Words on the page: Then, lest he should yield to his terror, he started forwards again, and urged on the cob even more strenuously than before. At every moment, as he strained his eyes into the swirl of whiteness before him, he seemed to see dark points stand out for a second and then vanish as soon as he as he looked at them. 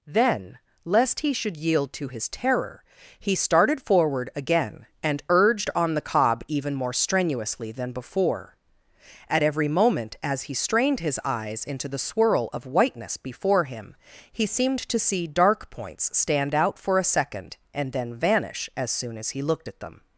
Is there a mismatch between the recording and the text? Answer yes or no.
yes